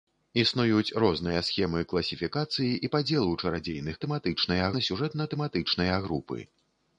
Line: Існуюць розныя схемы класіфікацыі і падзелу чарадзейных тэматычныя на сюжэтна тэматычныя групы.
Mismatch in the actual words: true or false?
false